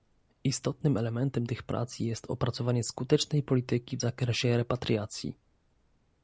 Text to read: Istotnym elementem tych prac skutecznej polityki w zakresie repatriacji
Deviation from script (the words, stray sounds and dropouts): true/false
true